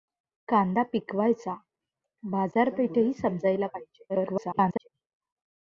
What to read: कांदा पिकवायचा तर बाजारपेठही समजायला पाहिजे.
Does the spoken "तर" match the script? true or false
false